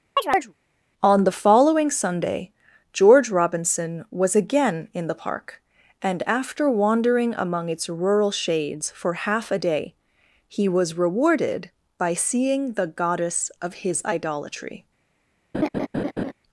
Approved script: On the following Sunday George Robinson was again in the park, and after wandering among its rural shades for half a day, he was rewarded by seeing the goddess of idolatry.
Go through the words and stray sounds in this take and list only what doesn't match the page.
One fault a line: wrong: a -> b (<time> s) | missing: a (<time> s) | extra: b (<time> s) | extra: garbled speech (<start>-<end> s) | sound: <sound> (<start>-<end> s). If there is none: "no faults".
sound: chirp (0.2-0.5 s)
extra: his (13.8 s)
sound: laugh (15.5-16.3 s)